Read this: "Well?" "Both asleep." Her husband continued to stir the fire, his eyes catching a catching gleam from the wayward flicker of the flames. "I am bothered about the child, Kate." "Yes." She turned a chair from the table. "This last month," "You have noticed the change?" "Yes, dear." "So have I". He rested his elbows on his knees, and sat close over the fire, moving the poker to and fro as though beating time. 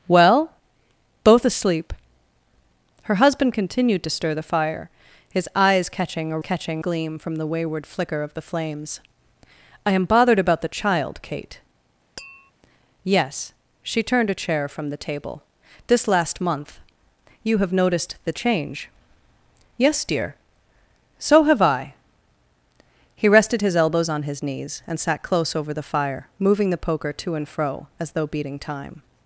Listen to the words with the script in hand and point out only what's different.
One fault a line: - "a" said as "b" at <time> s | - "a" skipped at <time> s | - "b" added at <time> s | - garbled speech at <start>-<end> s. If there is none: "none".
none